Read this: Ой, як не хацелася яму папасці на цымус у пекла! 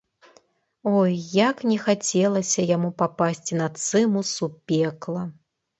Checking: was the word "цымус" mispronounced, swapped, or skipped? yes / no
no